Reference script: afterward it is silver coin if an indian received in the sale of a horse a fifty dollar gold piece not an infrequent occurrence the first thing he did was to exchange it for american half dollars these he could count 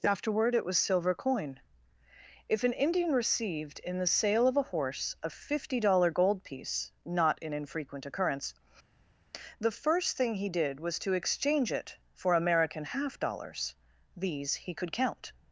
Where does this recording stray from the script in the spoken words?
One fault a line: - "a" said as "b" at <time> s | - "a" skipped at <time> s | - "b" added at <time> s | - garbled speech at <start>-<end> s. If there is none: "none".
- "is" said as "was" at 0.7 s